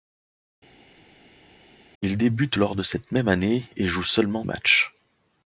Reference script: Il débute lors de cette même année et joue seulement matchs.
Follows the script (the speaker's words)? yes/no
yes